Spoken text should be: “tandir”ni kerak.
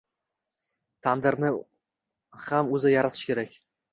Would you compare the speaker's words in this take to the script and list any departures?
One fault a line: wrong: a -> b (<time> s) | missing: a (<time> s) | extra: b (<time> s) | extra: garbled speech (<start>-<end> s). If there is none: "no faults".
extra: ham o'zi yaratishi (2.4 s)